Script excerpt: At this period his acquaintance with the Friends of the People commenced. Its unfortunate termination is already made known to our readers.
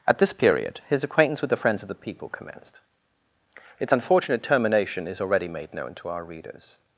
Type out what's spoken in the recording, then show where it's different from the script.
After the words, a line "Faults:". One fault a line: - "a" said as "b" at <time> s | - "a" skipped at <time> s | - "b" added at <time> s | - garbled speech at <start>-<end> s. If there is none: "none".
At this period his acquaintance with the Friends of the People commenced. Its unfortunate termination is already made known to our readers.
Faults:
none